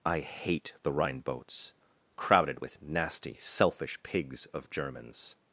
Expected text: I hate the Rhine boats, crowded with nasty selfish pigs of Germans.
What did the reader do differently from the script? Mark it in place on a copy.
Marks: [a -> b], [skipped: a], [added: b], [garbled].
I hate the Rhine boats, crowded with nasty selfish pigs of Germans.